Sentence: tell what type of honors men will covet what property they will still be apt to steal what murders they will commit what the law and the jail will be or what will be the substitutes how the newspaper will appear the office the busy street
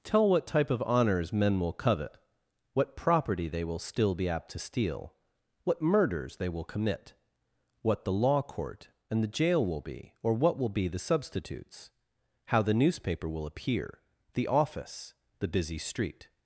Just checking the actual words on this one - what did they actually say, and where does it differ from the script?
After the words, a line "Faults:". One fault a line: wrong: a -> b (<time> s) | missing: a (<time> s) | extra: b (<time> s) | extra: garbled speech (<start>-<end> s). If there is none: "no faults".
tell what type of honors men will covet what property they will still be apt to steal what murders they will commit what the law court and the jail will be or what will be the substitutes how the newspaper will appear the office the busy street
Faults:
extra: court (8.4 s)